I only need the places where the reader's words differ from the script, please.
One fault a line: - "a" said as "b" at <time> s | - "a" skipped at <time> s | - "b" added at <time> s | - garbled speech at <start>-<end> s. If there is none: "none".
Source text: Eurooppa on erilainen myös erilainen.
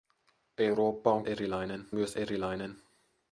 none